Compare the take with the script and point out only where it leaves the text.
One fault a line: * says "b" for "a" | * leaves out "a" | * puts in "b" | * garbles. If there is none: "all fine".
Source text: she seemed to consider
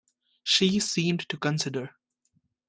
all fine